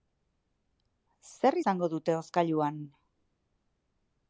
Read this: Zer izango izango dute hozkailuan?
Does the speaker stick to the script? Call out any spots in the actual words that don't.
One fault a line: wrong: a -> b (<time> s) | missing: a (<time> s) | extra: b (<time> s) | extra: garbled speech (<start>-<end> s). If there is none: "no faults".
missing: izango (1.9 s)